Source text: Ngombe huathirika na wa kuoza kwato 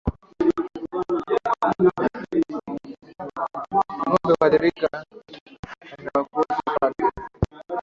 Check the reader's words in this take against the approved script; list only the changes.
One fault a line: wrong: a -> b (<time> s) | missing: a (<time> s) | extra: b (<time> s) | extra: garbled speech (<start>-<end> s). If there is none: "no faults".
no faults